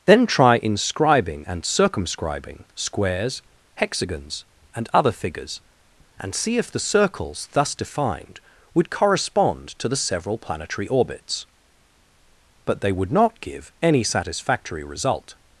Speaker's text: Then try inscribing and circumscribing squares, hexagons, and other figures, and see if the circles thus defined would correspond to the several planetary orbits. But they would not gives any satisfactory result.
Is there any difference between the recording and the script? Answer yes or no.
yes